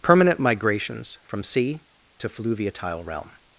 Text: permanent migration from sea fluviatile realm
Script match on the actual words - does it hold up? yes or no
no